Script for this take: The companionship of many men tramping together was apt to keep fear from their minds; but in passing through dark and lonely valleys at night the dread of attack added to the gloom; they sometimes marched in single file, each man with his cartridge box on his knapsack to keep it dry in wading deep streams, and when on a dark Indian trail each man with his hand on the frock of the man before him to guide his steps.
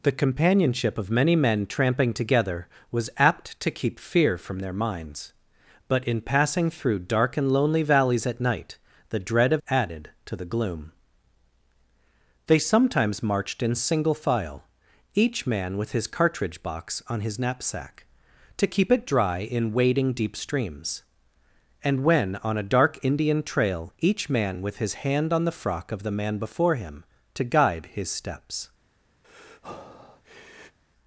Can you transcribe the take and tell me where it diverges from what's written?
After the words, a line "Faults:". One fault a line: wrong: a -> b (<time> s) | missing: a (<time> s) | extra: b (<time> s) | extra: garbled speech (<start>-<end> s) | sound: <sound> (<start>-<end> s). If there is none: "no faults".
The companionship of many men tramping together was apt to keep fear from their minds; but in passing through dark and lonely valleys at night the dread of added to the gloom; they sometimes marched in single file, each man with his cartridge box on his knapsack to keep it dry in wading deep streams, and when on a dark Indian trail each man with his hand on the frock of the man before him to guide his steps.
Faults:
missing: attack (9.6 s)
sound: breath (29.2-30.8 s)